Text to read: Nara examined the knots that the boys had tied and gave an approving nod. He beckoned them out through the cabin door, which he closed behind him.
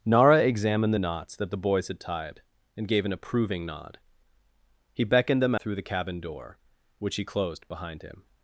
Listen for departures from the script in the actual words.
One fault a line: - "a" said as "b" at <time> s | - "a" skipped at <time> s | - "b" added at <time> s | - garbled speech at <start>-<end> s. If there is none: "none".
- "out" skipped at 5.5 s